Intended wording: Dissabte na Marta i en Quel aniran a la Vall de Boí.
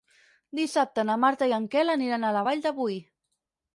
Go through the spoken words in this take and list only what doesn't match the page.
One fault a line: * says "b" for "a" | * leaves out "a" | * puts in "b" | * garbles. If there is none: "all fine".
all fine